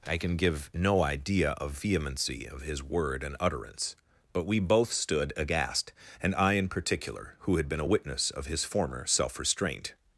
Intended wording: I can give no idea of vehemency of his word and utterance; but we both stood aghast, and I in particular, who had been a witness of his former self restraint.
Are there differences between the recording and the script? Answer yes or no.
no